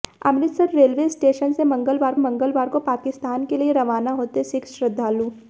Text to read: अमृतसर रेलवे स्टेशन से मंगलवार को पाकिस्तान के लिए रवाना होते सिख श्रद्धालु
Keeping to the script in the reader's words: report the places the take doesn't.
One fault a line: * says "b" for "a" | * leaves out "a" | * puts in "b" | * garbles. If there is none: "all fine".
* puts in "मंगलवार"